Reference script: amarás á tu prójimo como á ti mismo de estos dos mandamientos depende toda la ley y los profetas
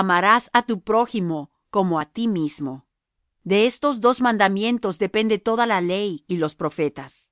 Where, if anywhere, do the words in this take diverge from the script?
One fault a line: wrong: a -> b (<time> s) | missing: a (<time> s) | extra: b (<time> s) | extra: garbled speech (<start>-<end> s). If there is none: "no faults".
no faults